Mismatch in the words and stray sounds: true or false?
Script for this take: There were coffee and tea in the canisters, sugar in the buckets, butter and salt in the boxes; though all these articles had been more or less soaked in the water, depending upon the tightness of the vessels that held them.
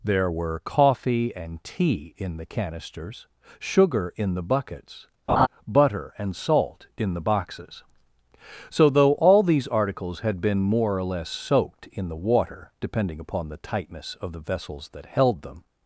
true